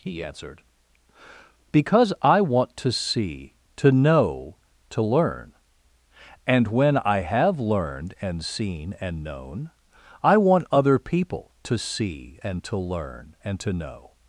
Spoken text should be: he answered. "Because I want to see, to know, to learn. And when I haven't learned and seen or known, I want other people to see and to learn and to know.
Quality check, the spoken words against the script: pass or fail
fail